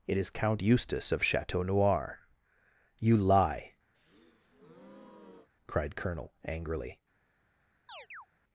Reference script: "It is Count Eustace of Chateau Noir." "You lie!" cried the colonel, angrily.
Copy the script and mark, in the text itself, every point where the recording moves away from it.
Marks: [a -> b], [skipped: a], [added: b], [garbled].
"It is Count Eustace of Chateau Noir." "You lie!" cried [skipped: the] colonel, angrily.